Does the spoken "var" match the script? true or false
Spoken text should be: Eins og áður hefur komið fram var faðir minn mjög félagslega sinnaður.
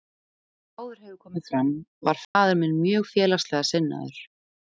true